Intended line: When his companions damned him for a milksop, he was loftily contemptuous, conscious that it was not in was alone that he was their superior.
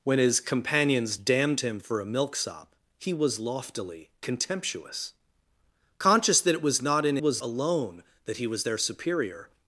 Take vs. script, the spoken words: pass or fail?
pass